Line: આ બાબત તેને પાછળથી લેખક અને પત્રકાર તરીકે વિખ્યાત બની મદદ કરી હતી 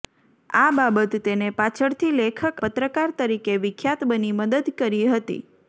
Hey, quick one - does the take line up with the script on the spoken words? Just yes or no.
no